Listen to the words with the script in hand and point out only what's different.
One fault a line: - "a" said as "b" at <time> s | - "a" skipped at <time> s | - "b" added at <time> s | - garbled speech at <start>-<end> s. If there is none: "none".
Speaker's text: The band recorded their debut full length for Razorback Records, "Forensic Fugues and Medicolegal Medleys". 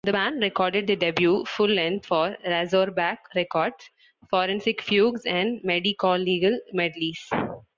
none